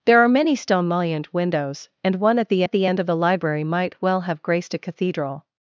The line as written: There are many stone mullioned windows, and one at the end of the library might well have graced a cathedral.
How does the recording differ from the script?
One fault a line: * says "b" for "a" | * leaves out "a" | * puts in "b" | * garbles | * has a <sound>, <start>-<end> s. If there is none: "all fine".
* puts in "at the"